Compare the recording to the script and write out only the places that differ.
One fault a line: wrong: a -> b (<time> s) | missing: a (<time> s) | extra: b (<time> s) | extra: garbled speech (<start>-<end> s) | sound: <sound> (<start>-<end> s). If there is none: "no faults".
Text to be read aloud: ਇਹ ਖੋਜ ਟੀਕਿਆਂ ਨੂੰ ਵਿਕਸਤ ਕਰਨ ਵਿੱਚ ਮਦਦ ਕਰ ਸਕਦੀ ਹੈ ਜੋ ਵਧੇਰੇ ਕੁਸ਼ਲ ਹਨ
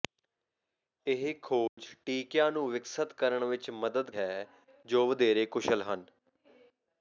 sound: dropout (1.7-1.8 s)
missing: ਕਰ ਸਕਦੀ (4.1 s)